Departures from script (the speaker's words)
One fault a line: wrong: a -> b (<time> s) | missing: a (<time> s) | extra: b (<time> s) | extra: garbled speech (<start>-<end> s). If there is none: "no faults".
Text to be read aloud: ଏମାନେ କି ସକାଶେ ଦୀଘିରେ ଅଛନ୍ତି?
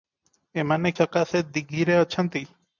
missing: କି (0.9 s)